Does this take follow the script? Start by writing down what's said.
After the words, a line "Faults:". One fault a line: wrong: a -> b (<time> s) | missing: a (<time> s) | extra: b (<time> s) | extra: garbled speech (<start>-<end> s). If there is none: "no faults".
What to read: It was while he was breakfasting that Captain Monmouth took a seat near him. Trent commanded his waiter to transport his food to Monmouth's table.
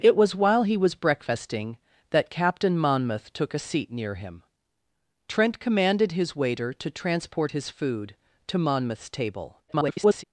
It was while he was breakfasting that Captain Monmouth took a seat near him. Trent commanded his waiter to transport his food to Monmouth's table. [garbled]
Faults:
extra: garbled speech (9.7-10.2 s)